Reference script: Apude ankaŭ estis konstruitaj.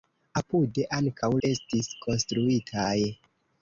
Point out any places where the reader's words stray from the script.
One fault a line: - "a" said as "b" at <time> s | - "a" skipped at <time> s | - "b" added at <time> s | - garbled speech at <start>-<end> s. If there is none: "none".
none